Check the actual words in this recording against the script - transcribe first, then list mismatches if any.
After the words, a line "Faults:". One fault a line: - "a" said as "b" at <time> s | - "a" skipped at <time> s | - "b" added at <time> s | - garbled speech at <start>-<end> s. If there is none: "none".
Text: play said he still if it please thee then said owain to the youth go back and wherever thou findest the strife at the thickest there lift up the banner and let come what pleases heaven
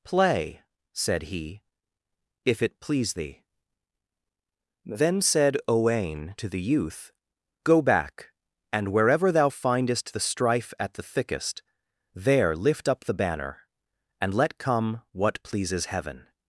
play said he if it please thee then said owain to the youth go back and wherever thou findest the strife at the thickest there lift up the banner and let come what pleases heaven
Faults:
- "still" skipped at 1.6 s